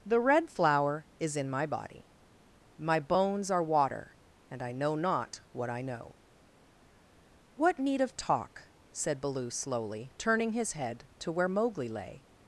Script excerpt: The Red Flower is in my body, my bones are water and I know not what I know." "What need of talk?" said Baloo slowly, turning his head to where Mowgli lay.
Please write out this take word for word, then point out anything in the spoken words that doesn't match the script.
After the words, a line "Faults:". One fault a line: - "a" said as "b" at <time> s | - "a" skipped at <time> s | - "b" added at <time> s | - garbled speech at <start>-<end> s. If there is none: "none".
The Red Flower is in my body, my bones are water and I know not what I know." "What need of talk?" said Baloo slowly, turning his head to where Mowgli lay.
Faults:
none